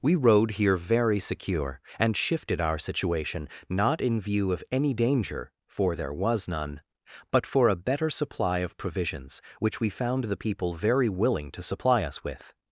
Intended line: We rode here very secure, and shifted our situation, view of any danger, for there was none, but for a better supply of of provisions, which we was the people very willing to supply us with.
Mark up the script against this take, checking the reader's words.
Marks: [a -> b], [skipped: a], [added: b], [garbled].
We rode here very secure, and shifted our situation, [added: not in] view of any danger, for there was none, but for a better supply of [skipped: of] provisions, which we [was -> found] the people very willing to supply us with.